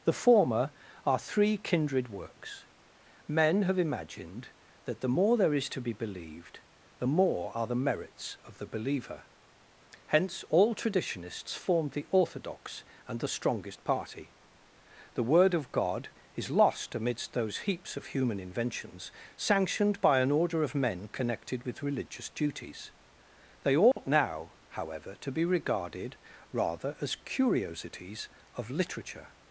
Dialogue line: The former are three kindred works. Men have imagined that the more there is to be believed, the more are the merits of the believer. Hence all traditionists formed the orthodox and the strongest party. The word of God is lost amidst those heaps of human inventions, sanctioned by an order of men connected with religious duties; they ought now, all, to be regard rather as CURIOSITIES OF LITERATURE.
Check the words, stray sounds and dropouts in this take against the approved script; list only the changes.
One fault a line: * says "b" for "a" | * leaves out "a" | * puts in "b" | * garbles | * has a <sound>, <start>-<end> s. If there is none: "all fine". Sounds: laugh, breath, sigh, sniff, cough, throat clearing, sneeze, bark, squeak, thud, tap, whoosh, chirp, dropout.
* has a dropout, 23.9-24.0 s
* says "however" for "all"
* says "regarded" for "regard"